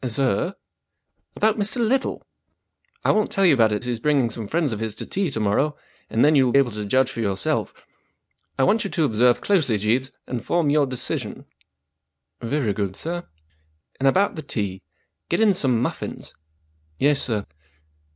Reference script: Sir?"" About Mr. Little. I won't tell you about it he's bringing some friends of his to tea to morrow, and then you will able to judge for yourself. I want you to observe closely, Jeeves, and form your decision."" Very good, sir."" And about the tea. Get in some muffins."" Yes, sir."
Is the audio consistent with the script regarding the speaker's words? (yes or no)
yes